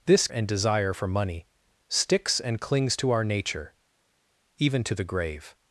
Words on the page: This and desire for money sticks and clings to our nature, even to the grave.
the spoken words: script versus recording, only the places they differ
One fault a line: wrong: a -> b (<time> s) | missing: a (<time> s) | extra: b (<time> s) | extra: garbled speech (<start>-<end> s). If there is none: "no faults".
no faults